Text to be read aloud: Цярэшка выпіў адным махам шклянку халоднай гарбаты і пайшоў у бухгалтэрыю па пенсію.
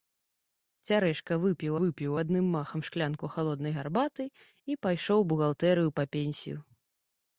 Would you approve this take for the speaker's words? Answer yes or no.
no